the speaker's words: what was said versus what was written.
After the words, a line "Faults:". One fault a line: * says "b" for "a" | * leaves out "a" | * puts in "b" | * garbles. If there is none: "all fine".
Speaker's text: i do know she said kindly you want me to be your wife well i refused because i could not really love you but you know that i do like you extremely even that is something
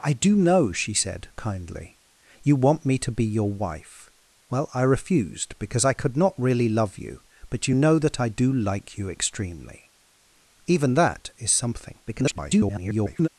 i do know she said kindly you want me to be your wife well i refused because i could not really love you but you know that i do like you extremely even that is something [garbled]
Faults:
* garbles